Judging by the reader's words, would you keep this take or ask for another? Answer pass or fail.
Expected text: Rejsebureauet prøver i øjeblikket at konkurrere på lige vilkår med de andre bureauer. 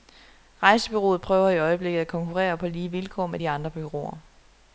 pass